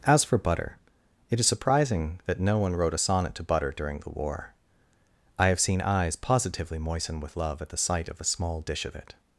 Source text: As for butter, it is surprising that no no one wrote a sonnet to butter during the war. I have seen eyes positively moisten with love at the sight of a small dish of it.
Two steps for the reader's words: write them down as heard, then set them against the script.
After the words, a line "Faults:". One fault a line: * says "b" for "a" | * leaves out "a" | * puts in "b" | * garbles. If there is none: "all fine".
As for butter, it is surprising that no one wrote a sonnet to butter during the war. I have seen eyes positively moisten with love at the sight of a small dish of it.
Faults:
* leaves out "no"